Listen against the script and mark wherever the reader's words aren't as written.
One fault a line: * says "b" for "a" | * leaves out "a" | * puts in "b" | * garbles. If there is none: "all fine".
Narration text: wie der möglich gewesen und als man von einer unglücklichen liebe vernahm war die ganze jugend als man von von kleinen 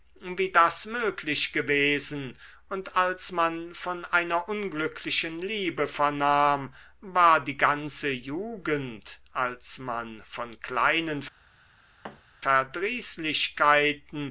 * says "das" for "der"
* leaves out "von"